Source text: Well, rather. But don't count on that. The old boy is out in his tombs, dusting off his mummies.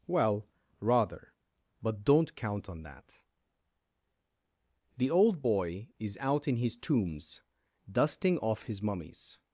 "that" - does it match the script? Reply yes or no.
yes